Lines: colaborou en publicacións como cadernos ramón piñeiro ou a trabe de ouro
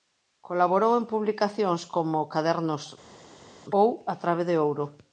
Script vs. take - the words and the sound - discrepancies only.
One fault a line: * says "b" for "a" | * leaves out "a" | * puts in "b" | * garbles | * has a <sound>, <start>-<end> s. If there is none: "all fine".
* leaves out "ramón piñeiro"